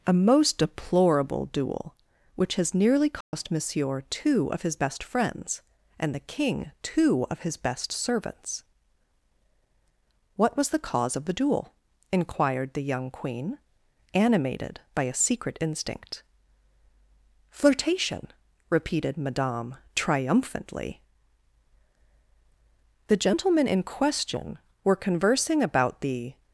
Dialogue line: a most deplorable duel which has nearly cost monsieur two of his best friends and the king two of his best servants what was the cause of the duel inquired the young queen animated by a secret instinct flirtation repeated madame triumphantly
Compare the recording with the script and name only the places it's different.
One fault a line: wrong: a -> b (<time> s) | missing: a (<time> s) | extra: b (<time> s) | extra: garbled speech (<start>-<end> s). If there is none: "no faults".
extra: the gentlemen in question were conversing about the (23.1 s)